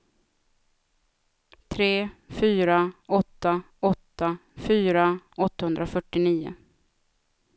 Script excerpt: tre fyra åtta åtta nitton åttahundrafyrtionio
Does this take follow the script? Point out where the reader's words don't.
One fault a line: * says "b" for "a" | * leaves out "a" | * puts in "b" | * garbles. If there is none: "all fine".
* says "fyra" for "nitton"